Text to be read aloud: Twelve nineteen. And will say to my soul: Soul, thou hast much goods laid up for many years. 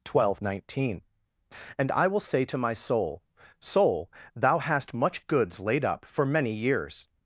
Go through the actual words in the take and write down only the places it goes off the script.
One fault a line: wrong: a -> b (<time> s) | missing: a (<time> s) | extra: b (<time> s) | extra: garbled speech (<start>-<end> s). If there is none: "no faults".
extra: I (1.9 s)